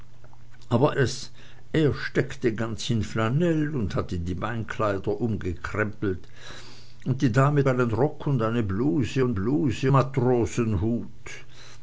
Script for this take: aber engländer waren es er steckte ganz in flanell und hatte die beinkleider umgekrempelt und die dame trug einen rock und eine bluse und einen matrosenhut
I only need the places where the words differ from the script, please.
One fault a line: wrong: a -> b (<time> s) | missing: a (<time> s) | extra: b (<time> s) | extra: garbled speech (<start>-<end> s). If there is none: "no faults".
missing: engländer waren (0.9 s)
missing: trug (7.7 s)
wrong: einen -> bluse (9.3 s)